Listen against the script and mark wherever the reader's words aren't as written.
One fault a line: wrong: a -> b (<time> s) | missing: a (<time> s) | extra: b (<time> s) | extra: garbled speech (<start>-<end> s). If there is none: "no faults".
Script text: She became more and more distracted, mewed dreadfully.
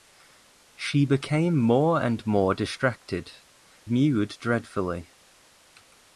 no faults